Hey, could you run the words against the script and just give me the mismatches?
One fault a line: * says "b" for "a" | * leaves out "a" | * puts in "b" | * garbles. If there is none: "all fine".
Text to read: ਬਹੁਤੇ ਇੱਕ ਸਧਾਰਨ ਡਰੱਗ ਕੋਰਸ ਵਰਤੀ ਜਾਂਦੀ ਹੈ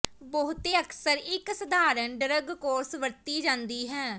* puts in "ਅਕਸਰ"